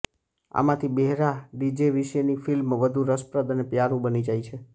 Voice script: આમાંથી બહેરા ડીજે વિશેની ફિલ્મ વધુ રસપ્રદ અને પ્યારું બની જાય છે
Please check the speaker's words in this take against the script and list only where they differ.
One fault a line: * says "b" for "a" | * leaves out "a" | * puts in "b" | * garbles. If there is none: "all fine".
all fine